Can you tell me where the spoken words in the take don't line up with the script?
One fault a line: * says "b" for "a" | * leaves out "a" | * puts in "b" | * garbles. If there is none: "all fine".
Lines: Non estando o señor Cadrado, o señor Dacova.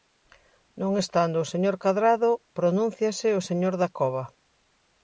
* puts in "pronúnciase"